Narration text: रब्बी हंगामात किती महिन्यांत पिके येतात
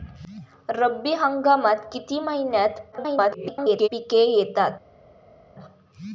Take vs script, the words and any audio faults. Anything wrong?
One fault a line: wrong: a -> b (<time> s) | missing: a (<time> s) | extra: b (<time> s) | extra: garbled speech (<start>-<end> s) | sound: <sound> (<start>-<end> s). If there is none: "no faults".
extra: garbled speech (2.9-3.9 s)